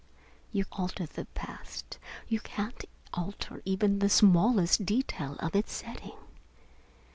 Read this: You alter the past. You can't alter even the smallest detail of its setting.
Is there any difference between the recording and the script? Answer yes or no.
no